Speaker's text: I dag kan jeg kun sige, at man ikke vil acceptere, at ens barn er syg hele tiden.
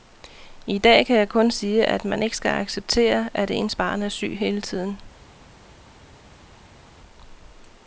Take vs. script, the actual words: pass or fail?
fail